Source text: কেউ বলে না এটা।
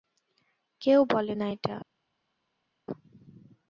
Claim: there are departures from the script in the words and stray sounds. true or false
false